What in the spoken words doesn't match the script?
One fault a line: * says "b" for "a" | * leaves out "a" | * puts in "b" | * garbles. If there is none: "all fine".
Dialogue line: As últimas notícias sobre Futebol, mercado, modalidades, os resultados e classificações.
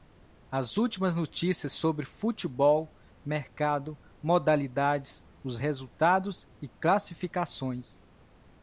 all fine